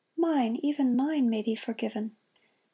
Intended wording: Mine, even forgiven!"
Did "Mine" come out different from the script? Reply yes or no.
no